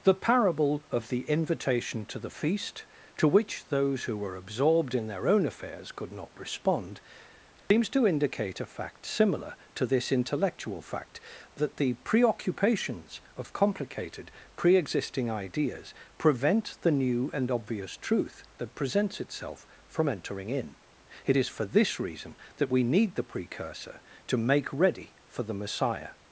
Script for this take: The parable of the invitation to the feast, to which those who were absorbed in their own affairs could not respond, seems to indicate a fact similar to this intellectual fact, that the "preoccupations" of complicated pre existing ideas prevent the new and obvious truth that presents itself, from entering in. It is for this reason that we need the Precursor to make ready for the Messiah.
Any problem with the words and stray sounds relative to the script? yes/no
yes